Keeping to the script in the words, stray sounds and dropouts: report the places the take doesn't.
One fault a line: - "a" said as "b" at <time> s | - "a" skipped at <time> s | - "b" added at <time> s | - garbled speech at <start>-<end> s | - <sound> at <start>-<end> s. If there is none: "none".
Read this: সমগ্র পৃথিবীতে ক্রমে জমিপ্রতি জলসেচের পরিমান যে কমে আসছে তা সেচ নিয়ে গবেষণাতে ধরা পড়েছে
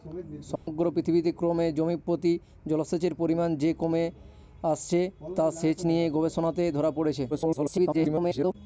- dropout at 0.6-0.7 s
- garbled speech at 7.3-8.6 s